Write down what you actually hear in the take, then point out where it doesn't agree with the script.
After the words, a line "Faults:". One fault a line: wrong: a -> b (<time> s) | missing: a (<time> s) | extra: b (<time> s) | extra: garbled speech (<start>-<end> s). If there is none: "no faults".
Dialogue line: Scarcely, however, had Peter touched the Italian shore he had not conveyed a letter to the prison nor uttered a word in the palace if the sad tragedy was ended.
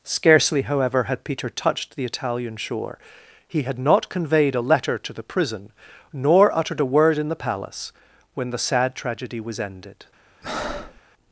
Scarcely, however, had Peter touched the Italian shore he had not conveyed a letter to the prison nor uttered a word in the palace when the sad tragedy was ended.
Faults:
wrong: if -> when (8.3 s)